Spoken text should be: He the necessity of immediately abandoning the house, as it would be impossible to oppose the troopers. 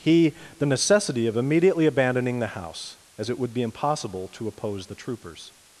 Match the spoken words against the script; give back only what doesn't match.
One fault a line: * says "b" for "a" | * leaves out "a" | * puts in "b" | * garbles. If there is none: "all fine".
all fine